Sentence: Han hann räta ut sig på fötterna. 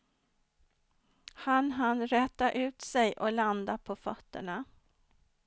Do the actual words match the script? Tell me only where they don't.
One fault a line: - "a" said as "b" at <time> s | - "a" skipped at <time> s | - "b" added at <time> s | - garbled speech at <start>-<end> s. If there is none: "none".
- "och landa" added at 3.1 s